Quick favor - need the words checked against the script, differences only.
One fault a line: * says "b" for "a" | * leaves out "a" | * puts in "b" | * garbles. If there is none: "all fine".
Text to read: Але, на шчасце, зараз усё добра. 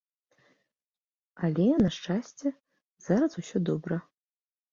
all fine